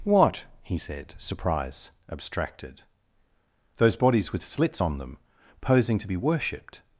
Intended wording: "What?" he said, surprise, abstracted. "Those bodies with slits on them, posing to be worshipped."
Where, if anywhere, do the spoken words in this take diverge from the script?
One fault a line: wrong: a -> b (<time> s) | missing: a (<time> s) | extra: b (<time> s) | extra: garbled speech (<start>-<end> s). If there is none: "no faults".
no faults